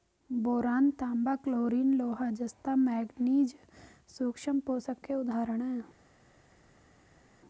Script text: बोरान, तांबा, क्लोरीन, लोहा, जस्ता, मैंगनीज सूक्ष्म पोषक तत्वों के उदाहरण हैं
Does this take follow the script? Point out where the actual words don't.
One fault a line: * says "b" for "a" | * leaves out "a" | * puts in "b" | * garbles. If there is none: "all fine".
* leaves out "तत्वों"